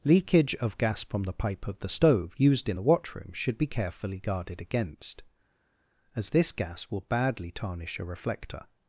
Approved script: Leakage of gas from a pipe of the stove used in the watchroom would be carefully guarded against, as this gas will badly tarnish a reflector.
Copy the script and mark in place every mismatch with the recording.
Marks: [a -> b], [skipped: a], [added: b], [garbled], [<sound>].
Leakage of gas from [a -> the] pipe of the stove used in the watchroom [would -> should] be carefully guarded against, as this gas will badly tarnish a reflector.